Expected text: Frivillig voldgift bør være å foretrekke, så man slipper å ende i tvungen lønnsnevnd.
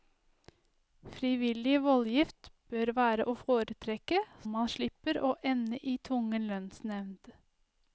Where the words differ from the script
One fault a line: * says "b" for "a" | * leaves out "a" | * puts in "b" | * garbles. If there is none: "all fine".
* leaves out "så"